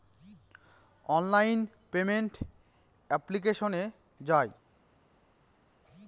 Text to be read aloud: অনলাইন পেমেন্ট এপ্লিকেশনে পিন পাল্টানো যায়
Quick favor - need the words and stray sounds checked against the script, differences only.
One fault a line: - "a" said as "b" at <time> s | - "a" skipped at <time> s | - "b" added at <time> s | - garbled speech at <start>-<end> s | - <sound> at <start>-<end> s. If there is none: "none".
- "পিন পাল্টানো" skipped at 3.8 s